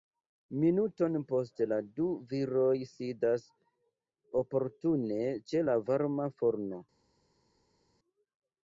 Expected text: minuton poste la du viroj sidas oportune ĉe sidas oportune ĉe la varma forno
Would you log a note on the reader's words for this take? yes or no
yes